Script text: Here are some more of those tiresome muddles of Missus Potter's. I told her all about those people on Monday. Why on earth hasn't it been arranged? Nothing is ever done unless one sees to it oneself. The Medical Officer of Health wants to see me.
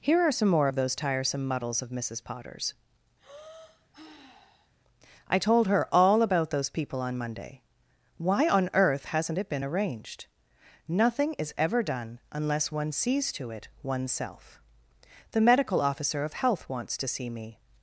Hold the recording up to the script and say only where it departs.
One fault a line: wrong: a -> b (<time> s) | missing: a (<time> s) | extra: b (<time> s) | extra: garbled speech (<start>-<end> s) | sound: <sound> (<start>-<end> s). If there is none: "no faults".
sound: sigh (3.2-4.7 s)